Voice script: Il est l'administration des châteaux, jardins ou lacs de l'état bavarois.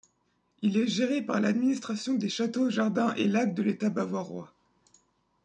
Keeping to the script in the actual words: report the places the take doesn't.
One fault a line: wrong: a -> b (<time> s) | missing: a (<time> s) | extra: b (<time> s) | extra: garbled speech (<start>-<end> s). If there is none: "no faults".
extra: géré par (0.9 s)
wrong: ou -> et (3.2 s)